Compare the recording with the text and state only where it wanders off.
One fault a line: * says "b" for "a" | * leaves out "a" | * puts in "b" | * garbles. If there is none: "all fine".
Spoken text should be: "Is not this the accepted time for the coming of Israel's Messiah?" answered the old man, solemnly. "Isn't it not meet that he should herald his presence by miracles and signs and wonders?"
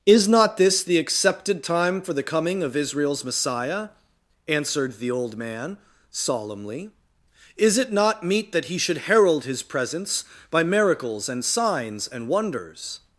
* says "Is" for "Isn't"